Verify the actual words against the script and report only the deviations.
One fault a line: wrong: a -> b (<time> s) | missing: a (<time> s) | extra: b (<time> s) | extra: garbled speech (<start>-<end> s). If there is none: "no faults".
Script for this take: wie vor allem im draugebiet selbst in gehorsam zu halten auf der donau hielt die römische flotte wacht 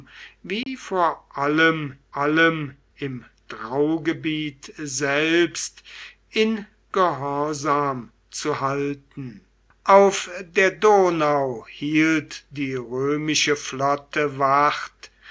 extra: allem (2.2 s)